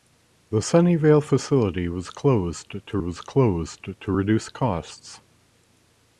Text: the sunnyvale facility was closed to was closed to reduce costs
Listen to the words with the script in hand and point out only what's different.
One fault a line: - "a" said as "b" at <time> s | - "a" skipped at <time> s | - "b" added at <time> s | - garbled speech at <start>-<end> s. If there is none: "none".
none